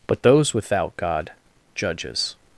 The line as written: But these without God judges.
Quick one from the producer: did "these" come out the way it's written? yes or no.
no